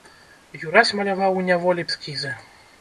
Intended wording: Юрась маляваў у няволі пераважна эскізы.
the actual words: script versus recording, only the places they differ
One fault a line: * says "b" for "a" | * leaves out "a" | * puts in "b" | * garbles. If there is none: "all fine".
* leaves out "пераважна"